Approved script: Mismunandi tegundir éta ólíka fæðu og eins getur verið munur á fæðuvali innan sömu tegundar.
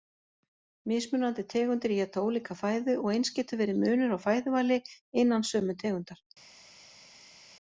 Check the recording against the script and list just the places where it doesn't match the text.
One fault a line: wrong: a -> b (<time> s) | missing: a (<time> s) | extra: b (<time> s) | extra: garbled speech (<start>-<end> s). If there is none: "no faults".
no faults